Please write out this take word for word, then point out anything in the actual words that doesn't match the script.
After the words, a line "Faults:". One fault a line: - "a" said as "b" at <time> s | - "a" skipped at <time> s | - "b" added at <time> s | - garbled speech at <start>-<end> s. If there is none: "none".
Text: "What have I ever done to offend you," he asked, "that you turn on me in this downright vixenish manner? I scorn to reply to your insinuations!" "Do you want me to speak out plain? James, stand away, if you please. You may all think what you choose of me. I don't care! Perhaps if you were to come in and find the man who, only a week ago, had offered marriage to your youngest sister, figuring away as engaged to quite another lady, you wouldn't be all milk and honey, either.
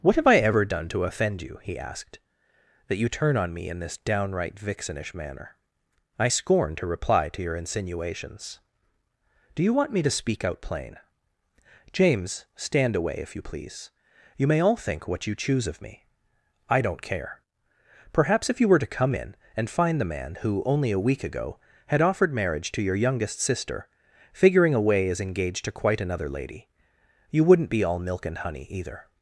"What have I ever done to offend you," he asked, "that you turn on me in this downright vixenish manner? I scorn to reply to your insinuations!" "Do you want me to speak out plain? James, stand away, if you please. You may all think what you choose of me. I don't care! Perhaps if you were to come in and find the man who, only a week ago, had offered marriage to your youngest sister, figuring away as engaged to quite another lady, you wouldn't be all milk and honey, either.
Faults:
none